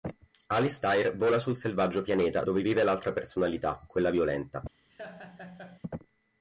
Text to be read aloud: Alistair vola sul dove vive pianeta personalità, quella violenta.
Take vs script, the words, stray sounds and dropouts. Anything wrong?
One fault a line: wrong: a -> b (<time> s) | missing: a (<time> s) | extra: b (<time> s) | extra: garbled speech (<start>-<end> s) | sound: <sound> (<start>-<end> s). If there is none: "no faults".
extra: selvaggio pianeta (1.6 s)
wrong: pianeta -> l'altra (2.8 s)
sound: laugh (4.9-5.8 s)